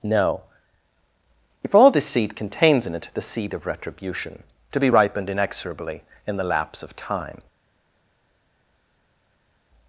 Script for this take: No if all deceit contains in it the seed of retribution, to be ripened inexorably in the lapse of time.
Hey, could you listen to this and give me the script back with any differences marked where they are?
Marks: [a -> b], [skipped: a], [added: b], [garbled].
No if all deceit contains in it the seed of retribution, to be ripened inexorably in the lapse of time.